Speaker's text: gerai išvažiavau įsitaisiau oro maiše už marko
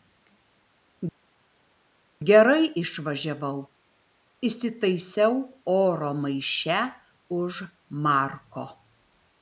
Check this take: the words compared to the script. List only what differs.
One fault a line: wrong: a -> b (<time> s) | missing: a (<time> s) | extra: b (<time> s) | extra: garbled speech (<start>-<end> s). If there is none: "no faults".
no faults